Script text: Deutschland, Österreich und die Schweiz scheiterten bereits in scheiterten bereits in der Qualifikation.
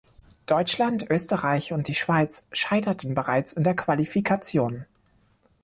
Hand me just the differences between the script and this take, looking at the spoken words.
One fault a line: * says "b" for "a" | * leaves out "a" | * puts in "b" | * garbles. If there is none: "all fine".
* leaves out "scheiterten bereits in"